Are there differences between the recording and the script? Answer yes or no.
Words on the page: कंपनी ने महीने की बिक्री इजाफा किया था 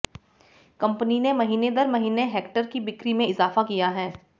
yes